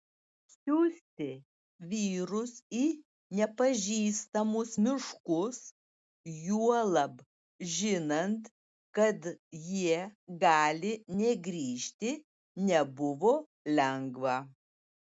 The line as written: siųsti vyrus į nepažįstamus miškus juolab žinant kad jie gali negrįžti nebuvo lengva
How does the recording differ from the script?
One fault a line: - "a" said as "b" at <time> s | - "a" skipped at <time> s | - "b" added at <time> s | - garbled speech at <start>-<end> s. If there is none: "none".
none